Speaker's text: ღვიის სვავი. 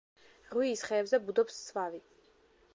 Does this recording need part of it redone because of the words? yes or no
yes